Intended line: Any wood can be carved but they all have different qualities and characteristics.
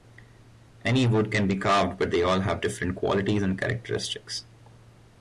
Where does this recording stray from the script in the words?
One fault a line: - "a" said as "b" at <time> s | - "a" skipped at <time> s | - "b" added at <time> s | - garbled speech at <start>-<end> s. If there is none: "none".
none